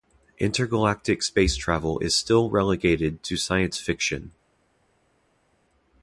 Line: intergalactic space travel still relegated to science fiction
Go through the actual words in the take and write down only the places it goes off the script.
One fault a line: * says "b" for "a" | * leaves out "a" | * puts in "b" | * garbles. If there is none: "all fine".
* puts in "is"